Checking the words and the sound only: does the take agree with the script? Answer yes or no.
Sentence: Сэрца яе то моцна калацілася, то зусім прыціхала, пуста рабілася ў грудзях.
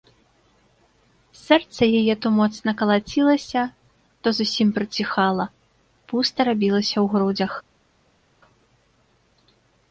yes